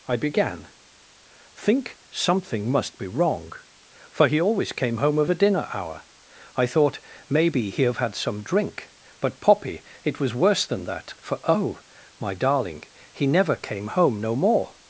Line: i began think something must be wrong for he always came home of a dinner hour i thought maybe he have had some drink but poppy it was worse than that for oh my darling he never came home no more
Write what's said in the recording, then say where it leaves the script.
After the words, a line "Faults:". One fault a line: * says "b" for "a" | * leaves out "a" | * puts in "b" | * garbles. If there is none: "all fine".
i began think something must be wrong for he always came home of a dinner hour i thought maybe he have had some drink but poppy it was worse than that for oh my darling he never came home no more
Faults:
all fine